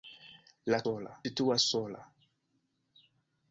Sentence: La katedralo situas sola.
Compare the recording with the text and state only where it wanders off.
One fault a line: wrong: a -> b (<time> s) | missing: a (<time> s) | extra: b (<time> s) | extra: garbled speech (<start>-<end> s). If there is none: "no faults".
wrong: katedralo -> sola (0.8 s)